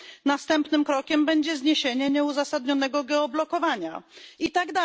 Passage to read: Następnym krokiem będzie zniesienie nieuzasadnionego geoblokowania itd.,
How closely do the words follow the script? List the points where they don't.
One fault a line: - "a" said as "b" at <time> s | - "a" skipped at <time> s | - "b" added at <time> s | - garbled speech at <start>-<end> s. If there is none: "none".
none